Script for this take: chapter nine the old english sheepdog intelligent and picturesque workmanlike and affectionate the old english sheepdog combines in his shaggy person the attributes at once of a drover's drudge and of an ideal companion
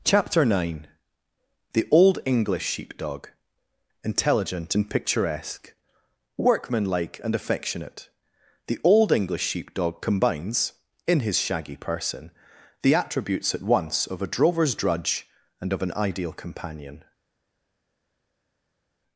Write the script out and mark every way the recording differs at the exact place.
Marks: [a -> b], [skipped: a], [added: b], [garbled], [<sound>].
chapter nine the old english sheepdog intelligent and picturesque workmanlike and affectionate the old english sheepdog combines in his shaggy person the attributes at once of a drover's drudge and of an ideal companion